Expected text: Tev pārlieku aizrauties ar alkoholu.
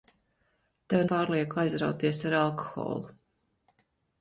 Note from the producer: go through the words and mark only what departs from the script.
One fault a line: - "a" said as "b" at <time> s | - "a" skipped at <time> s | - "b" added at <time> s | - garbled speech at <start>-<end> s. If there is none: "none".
none